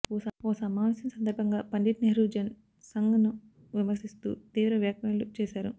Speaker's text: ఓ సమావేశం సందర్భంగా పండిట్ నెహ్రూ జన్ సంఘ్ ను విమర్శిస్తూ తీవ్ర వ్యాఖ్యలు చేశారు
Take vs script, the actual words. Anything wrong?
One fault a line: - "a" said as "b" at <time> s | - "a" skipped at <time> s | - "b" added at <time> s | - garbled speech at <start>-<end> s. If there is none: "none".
none